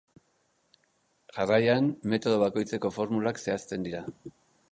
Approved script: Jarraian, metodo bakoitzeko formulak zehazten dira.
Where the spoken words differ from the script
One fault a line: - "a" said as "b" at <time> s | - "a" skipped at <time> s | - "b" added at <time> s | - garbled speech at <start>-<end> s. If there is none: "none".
none